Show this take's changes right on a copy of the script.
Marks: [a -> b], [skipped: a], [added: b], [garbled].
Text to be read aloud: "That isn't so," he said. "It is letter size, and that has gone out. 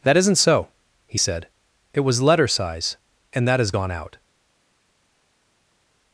"That isn't so," he said. "It [is -> was] letter size, and that has gone out.